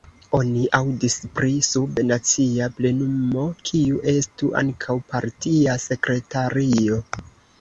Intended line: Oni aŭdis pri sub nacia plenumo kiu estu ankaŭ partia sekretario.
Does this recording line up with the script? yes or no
yes